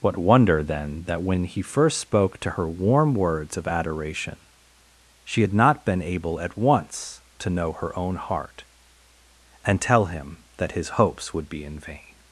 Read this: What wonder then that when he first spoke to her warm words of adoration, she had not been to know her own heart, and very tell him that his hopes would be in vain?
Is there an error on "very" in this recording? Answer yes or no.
yes